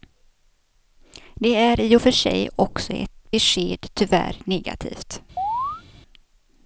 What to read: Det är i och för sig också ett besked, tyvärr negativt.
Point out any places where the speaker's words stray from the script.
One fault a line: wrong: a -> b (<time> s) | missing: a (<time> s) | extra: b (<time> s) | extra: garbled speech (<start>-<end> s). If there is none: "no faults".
no faults